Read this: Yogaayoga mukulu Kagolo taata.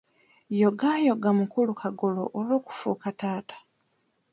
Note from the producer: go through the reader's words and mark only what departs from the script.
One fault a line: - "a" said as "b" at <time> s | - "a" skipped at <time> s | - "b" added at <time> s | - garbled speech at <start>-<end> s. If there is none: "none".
- "olw'okufuuka" added at 2.4 s